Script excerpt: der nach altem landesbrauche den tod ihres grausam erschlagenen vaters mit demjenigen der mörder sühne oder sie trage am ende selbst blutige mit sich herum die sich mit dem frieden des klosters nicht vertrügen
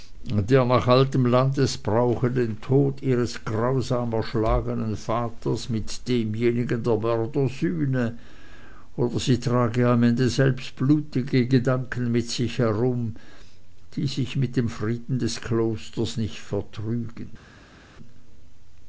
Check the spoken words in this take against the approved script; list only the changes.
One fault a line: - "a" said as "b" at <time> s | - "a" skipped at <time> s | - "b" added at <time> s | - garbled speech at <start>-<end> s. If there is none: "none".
- "gedanken" added at 11.5 s